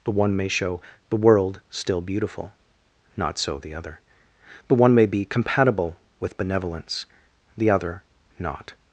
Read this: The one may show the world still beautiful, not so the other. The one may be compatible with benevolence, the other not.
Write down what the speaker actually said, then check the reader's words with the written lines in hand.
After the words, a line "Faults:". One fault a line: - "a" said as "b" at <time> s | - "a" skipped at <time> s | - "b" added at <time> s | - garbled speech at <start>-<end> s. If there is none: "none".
The one may show the world still beautiful, not so the other. The one may be compatible with benevolence, the other not.
Faults:
none